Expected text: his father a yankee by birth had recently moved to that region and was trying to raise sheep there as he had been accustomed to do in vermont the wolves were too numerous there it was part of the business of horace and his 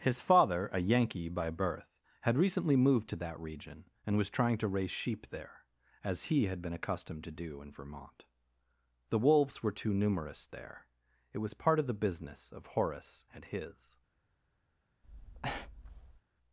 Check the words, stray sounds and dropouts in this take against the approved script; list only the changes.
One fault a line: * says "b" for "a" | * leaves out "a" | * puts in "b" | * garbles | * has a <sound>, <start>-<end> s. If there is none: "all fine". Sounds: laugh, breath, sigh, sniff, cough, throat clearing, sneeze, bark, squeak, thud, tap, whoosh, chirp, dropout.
* has a breath, 15.0-16.2 s